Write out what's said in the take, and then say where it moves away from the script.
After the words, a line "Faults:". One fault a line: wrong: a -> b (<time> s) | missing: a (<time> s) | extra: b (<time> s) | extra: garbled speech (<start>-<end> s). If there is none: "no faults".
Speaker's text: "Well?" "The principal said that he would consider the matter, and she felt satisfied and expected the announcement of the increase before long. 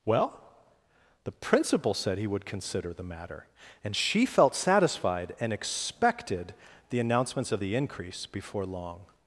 "Well?" "The principal said he would consider the matter, and she felt satisfied and expected the announcements of the increase before long.
Faults:
missing: that (2.2 s)
wrong: announcement -> announcements (7.0 s)